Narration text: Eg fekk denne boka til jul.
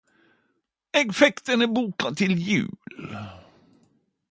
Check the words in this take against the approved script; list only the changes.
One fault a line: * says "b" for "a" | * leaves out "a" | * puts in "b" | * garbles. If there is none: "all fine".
all fine